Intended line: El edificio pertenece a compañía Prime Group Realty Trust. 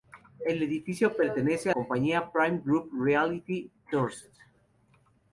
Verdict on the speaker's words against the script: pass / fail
pass